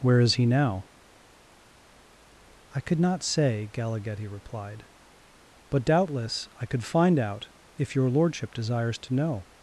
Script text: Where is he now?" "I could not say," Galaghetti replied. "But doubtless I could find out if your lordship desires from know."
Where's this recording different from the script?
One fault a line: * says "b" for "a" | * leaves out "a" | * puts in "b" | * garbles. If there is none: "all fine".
* says "to" for "from"